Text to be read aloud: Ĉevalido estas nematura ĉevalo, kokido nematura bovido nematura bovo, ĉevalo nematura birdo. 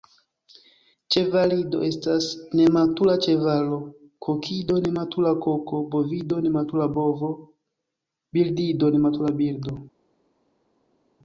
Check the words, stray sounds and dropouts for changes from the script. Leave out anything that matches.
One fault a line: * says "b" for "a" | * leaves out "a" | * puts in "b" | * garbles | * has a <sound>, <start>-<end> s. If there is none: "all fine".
* puts in "koko"
* says "birdido" for "ĉevalo"